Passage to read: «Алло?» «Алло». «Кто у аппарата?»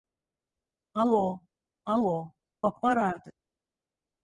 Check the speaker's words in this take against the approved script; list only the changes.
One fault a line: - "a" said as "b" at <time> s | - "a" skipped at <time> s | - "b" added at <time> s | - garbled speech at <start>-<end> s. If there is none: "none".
- "Кто" skipped at 2.3 s